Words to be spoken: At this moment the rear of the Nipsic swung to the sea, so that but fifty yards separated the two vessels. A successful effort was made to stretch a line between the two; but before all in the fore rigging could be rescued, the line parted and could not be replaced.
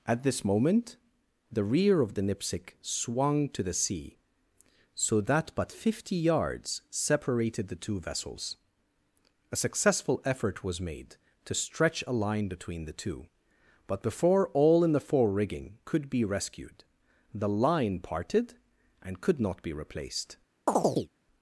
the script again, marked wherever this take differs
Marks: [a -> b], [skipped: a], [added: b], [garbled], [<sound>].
At this moment the rear of the Nipsic swung to the sea, so that but fifty yards separated the two vessels. A successful effort was made to stretch a line between the two; but before all in the fore rigging could be rescued, the line parted and could not be replaced. [chirp]